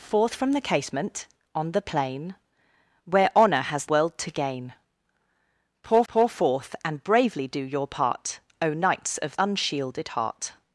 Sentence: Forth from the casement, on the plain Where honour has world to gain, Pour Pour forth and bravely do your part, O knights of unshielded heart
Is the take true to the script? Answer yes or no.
yes